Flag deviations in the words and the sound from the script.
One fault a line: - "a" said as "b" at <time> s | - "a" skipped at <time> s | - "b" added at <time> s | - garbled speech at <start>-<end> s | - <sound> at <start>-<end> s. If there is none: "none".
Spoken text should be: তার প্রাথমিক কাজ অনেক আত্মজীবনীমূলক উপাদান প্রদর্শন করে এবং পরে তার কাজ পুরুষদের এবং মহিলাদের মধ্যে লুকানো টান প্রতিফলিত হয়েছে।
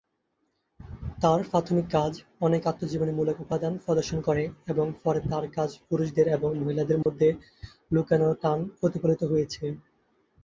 - dropout at 7.0-7.1 s